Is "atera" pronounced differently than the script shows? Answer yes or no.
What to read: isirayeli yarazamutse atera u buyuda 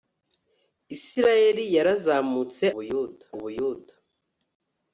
yes